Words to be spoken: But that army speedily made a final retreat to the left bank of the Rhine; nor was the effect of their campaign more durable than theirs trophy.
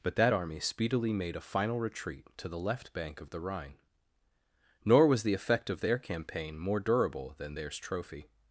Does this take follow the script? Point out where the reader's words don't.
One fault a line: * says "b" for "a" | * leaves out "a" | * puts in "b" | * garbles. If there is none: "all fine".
all fine